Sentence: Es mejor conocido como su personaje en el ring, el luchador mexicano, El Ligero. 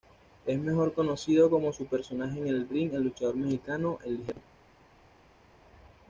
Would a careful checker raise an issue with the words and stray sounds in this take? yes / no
no